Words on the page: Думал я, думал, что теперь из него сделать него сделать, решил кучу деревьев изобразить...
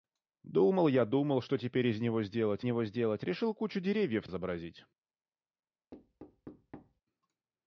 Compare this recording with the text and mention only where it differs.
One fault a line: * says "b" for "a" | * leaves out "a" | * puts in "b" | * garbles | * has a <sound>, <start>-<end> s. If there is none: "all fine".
* has a thud, 5.9-7.0 s